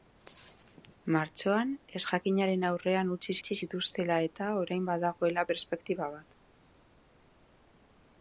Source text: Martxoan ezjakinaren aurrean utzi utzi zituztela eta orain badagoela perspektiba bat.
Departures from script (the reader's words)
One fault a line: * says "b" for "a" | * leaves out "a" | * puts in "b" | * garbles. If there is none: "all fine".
all fine